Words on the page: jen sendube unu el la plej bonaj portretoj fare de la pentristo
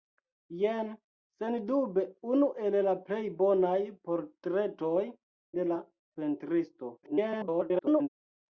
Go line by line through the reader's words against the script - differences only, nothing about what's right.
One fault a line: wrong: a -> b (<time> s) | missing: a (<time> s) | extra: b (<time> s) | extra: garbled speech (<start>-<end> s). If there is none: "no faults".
missing: fare (5.1 s)
extra: garbled speech (7.0-8.1 s)